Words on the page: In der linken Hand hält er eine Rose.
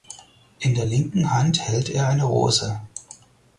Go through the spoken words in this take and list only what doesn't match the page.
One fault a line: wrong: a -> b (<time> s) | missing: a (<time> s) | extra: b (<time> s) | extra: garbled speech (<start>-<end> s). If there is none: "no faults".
no faults